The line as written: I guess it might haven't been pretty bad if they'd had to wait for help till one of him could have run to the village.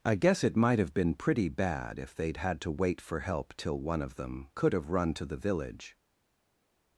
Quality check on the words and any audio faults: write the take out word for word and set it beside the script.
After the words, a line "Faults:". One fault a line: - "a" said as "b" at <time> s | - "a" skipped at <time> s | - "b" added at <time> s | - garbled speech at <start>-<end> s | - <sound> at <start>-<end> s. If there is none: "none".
I guess it might have been pretty bad if they'd had to wait for help till one of them could have run to the village.
Faults:
- "haven't" said as "have" at 0.8 s
- "him" said as "them" at 4.2 s